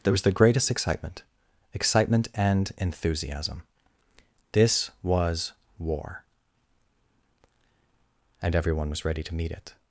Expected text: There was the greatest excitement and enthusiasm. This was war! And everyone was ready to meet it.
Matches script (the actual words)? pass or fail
fail